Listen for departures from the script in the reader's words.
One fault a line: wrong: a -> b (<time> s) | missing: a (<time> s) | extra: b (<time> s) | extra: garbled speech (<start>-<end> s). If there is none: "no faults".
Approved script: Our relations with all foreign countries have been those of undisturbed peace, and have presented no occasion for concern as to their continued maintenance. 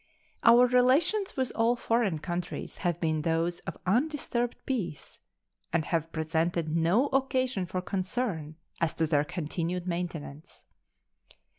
no faults